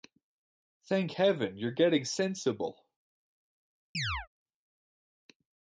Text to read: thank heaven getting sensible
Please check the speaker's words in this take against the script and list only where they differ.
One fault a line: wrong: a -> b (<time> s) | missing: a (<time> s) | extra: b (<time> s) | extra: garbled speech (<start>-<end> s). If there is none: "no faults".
extra: you're (1.6 s)